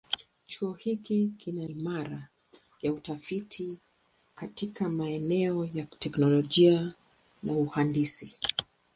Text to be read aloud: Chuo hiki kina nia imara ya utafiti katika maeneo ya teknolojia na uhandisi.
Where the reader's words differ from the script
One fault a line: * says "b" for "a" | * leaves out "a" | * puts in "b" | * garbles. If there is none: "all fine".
* leaves out "nia"